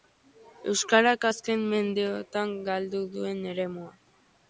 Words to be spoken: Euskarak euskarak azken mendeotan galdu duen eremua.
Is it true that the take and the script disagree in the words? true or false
true